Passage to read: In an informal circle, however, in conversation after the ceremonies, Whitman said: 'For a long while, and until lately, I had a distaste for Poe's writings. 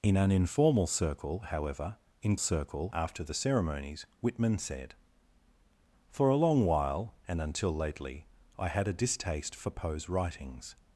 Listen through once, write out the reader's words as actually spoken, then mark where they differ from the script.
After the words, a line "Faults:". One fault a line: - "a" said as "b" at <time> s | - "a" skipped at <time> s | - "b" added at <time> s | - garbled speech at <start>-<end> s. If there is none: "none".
In an informal circle, however, in circle after the ceremonies, Whitman said: 'For a long while, and until lately, I had a distaste for Poe's writings.
Faults:
- "conversation" said as "circle" at 2.4 s